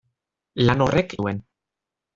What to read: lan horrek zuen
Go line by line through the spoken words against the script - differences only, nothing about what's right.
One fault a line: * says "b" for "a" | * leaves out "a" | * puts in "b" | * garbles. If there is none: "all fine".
all fine